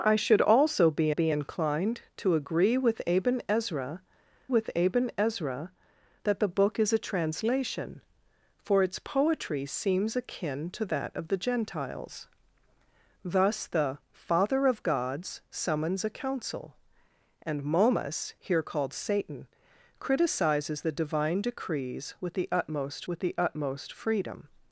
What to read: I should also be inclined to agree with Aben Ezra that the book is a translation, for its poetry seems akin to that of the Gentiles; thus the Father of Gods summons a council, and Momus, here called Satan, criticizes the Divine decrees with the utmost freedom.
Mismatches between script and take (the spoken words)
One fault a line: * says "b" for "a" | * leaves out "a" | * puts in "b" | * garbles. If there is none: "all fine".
* puts in "be"
* puts in "with Aben Ezra"
* puts in "with the utmost"